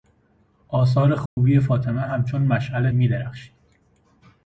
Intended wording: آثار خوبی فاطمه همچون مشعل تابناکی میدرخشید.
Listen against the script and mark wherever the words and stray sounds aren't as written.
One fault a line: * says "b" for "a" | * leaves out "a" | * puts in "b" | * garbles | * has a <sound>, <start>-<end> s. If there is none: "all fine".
* has a dropout, 1.3-1.4 s
* leaves out "تابناکی"